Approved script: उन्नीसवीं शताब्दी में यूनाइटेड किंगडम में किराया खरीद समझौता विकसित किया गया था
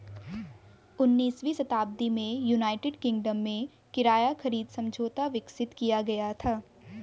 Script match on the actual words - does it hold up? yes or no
yes